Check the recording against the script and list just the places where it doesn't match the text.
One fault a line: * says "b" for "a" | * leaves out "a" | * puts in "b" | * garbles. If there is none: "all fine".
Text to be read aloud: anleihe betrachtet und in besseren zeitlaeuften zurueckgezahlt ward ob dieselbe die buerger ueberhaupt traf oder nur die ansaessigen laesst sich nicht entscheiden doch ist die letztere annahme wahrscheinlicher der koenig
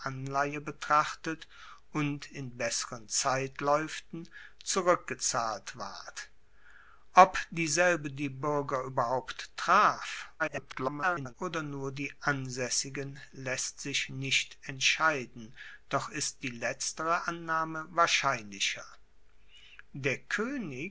* garbles